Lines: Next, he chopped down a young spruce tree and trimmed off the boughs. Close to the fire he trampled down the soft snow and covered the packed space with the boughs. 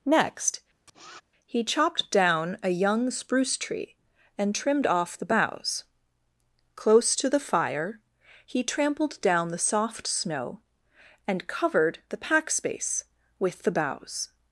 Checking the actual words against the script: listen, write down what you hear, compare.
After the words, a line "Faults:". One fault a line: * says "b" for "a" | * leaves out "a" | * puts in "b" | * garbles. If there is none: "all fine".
Next, he chopped down a young spruce tree and trimmed off the boughs. Close to the fire he trampled down the soft snow and covered the pack space with the boughs.
Faults:
* says "pack" for "packed"